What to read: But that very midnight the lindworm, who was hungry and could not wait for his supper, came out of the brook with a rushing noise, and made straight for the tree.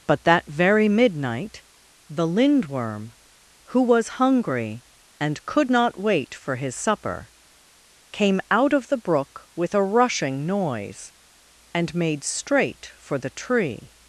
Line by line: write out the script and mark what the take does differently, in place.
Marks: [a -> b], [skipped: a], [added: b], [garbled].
But that very midnight the lindworm, who was hungry and could not wait for his supper, came out of the brook with a rushing noise, and made straight for the tree.